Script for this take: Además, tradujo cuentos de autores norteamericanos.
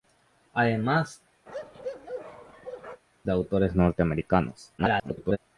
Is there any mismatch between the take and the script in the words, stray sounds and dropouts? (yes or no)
yes